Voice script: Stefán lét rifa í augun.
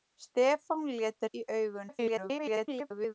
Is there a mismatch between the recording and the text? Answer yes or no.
yes